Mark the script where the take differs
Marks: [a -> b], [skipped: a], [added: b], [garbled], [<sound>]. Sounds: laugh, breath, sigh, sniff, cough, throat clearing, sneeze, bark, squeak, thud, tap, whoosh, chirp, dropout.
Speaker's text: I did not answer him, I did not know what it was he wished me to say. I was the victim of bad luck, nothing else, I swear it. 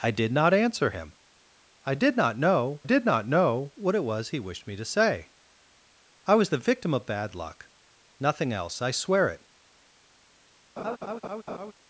I did not answer him, I did not know [added: did not know] what it was he wished me to say. I was the victim of bad luck, nothing else, I swear it. [laugh]